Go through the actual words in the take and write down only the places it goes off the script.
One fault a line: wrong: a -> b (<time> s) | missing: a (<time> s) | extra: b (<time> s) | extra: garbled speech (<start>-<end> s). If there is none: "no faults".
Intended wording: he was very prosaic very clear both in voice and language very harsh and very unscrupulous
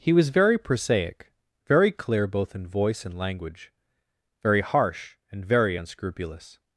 no faults